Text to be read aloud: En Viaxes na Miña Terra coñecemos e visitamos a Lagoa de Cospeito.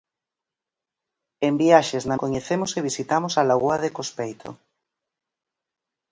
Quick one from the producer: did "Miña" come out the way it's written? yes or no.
no